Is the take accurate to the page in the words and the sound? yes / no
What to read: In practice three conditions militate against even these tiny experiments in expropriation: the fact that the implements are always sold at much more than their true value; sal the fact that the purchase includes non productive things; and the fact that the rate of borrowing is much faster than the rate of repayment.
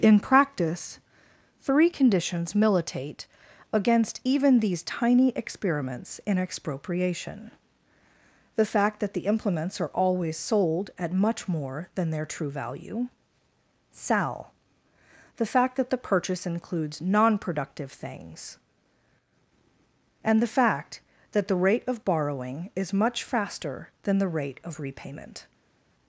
yes